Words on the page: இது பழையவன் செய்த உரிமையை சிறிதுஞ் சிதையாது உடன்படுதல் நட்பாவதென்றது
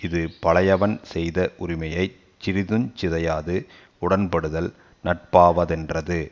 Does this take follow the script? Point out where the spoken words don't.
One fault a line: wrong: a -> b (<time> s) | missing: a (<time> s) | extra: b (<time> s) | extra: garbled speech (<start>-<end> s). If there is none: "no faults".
no faults